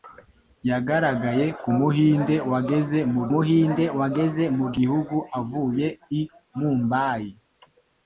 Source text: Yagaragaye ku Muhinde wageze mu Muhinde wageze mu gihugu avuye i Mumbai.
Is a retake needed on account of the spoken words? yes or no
no